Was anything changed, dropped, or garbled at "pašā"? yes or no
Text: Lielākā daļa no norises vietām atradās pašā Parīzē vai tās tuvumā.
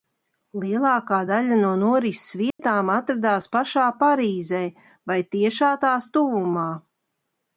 no